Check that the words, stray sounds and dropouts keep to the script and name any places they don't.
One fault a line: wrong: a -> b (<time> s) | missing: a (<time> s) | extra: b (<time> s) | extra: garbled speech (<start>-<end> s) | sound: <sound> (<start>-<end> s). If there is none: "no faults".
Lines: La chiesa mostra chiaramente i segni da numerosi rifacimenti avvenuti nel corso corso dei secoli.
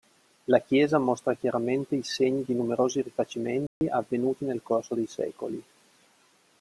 wrong: da -> di (2.4 s)
sound: dropout (3.7-3.8 s)
missing: corso (5.0 s)